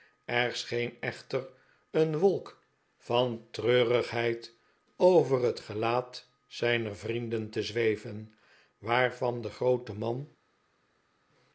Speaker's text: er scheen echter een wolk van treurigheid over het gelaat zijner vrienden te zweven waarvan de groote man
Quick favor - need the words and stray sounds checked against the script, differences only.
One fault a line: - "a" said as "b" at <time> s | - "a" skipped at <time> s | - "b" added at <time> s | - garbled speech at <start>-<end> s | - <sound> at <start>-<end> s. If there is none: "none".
none